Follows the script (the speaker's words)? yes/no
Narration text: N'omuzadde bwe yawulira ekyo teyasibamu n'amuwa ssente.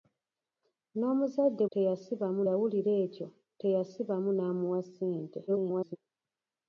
no